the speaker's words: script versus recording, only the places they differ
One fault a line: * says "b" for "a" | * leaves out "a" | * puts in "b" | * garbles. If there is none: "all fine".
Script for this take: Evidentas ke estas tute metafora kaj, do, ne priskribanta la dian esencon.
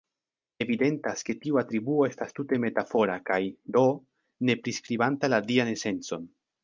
* puts in "tiu atribuo"